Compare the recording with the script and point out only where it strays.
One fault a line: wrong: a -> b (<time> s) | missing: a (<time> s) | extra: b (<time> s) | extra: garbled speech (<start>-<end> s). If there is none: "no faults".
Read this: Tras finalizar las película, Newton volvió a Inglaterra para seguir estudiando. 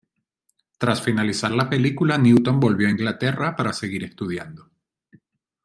wrong: las -> la (1.5 s)